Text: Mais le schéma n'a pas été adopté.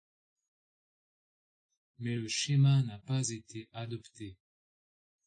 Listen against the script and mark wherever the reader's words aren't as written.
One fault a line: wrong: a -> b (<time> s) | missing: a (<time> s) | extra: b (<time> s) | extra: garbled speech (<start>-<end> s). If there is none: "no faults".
no faults